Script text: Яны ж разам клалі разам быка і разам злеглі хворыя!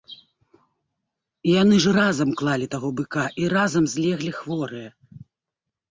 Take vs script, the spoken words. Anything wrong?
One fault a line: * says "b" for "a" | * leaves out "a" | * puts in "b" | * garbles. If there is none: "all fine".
* says "таго" for "разам"